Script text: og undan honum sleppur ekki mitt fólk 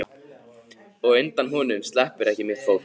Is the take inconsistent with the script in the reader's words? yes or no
no